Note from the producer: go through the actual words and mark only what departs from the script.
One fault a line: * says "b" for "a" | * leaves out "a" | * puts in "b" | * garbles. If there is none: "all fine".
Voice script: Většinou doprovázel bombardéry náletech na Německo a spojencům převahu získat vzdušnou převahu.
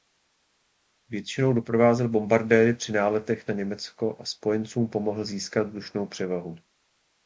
* puts in "při"
* says "pomohl" for "převahu"